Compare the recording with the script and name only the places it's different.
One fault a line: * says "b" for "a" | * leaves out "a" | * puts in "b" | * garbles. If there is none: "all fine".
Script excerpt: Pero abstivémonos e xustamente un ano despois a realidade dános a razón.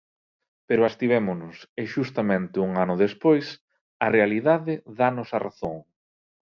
all fine